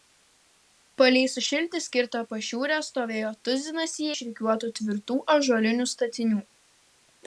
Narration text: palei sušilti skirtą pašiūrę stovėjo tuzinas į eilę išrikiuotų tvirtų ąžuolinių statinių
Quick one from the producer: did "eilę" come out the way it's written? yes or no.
no